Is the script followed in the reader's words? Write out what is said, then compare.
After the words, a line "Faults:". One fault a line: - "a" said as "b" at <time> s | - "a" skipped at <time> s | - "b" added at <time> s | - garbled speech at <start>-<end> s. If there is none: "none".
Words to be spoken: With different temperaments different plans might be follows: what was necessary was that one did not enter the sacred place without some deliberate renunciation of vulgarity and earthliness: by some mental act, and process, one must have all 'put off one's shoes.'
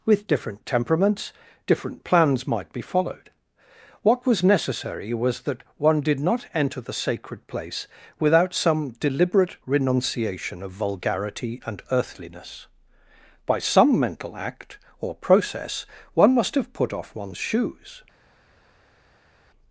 With different temperaments different plans might be followed: what was necessary was that one did not enter the sacred place without some deliberate renunciation of vulgarity and earthliness: by some mental act, or process, one must have 'put off one's shoes.'
Faults:
- "follows" said as "followed" at 2.8 s
- "and" said as "or" at 15.0 s
- "all" skipped at 16.7 s